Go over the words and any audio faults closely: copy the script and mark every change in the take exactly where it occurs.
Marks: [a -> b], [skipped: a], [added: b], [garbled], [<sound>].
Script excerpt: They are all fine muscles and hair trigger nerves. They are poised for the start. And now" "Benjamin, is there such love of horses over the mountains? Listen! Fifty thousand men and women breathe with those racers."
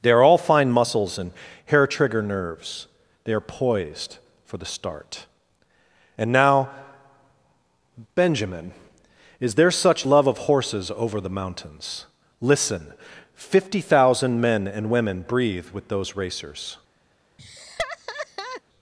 They are all fine muscles and hair trigger nerves. They are poised for the start. And now" "Benjamin, is there such love of horses over the mountains? Listen! Fifty thousand men and women breathe with those racers." [laugh]